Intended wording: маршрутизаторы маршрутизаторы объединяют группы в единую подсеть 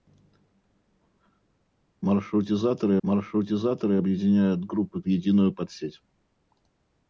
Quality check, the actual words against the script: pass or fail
pass